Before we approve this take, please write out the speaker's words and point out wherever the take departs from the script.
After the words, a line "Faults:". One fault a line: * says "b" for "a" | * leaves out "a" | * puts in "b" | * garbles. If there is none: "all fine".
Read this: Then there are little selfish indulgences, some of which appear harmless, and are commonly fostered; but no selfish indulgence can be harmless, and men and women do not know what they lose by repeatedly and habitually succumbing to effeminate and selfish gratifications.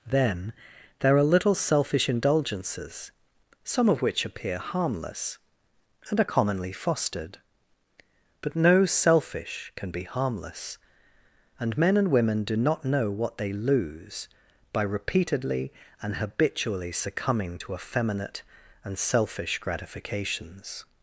Then there are little selfish indulgences, some of which appear harmless, and are commonly fostered; but no selfish can be harmless, and men and women do not know what they lose by repeatedly and habitually succumbing to effeminate and selfish gratifications.
Faults:
* leaves out "indulgence"